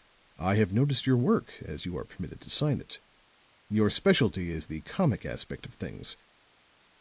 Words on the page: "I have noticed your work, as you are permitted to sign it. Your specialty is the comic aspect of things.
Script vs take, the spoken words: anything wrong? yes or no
no